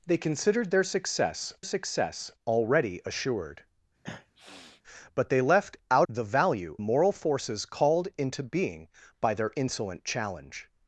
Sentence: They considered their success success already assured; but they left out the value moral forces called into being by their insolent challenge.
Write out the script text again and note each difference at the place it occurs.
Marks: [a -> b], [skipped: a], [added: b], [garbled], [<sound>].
They considered their success success already assured; [sniff] but they left out the value moral forces called into being by their insolent challenge.